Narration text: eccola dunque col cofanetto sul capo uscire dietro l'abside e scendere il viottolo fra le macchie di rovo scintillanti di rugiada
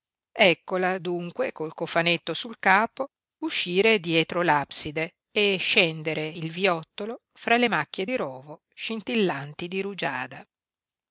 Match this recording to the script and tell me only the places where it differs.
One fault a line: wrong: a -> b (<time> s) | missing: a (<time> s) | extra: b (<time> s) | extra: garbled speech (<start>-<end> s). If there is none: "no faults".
no faults